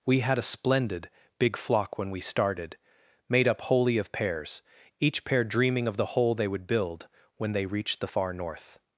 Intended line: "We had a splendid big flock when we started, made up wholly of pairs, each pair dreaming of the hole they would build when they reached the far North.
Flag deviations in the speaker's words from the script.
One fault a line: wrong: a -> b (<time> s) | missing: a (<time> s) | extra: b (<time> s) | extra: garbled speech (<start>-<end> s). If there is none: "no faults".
no faults